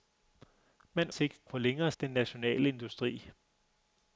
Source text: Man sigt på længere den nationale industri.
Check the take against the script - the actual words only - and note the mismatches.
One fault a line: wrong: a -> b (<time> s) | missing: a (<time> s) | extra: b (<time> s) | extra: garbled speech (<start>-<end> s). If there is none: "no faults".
no faults